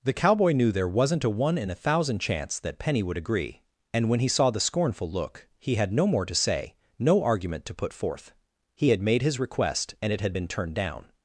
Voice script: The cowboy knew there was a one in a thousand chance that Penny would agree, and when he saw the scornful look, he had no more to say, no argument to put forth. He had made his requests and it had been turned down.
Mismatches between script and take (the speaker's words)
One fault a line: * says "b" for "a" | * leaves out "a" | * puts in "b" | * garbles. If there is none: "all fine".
* says "wasn't" for "was"
* says "request" for "requests"